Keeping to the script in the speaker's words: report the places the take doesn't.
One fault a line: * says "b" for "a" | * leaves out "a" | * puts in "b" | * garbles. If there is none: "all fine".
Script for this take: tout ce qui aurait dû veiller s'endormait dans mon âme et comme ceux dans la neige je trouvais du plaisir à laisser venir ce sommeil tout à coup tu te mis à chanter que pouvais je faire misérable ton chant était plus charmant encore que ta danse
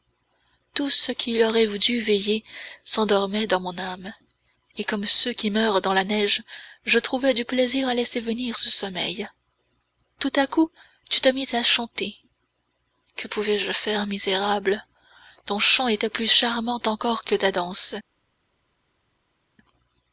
* puts in "qui meurent"